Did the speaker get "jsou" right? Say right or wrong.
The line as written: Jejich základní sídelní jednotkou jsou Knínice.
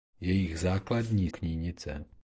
wrong